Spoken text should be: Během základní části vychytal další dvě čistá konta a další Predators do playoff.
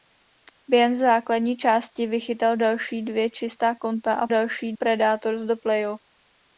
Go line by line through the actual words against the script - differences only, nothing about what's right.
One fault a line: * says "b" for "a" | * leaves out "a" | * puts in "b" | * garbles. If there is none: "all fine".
all fine